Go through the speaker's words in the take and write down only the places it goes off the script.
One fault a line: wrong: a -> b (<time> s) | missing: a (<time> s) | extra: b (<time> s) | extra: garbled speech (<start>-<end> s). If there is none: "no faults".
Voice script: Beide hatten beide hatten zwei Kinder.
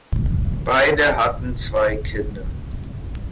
missing: beide hatten (1.6 s)